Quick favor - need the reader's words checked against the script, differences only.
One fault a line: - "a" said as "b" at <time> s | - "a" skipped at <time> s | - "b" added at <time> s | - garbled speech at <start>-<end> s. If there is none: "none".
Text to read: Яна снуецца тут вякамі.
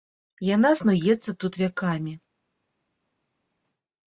none